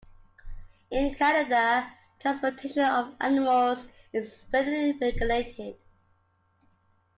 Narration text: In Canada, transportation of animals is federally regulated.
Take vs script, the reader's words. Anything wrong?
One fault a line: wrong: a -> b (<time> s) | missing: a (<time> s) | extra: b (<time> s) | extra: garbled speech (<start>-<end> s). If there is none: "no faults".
no faults